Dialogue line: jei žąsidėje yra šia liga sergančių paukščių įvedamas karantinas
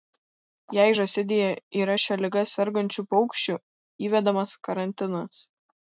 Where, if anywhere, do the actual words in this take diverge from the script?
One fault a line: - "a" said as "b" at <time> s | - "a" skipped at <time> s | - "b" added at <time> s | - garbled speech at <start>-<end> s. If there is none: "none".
none